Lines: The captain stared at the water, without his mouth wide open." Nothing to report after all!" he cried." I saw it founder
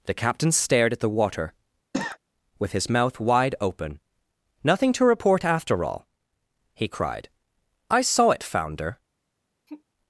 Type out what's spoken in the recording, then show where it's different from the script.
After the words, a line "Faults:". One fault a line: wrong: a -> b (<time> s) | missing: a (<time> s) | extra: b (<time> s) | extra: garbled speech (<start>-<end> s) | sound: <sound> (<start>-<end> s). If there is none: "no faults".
The captain stared at the water, with his mouth wide open." Nothing to report after all!" he cried." I saw it founder
Faults:
sound: cough (1.9-2.2 s)
wrong: without -> with (2.6 s)
sound: sigh (9.7-9.8 s)